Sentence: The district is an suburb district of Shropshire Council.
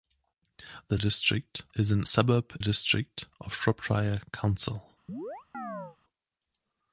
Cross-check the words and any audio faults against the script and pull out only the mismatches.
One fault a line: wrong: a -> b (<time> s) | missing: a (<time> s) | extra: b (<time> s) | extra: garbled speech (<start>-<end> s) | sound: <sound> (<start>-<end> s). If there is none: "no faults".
sound: chirp (5.1-6.0 s)